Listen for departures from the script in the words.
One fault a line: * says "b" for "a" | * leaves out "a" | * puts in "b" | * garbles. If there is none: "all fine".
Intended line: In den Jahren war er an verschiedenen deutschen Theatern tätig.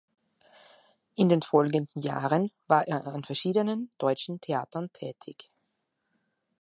* puts in "folgenden"